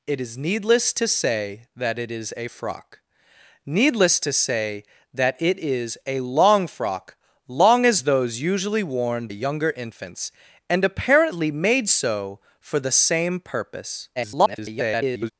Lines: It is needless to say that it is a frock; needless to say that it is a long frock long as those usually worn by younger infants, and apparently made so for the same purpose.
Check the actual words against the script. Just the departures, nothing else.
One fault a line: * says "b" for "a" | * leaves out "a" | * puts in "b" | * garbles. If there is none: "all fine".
* leaves out "by"
* garbles